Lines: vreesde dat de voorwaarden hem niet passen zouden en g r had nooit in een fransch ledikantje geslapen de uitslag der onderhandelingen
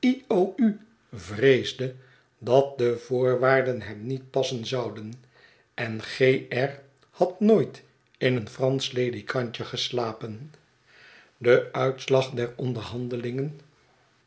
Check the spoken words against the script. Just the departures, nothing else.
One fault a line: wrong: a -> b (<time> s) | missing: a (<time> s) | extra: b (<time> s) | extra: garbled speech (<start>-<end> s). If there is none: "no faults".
no faults